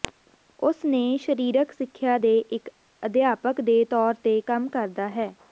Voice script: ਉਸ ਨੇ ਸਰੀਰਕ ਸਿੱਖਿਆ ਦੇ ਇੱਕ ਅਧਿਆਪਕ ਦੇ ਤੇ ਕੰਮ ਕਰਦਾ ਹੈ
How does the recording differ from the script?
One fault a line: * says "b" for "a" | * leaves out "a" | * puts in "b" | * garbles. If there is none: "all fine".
* puts in "ਤੌਰ"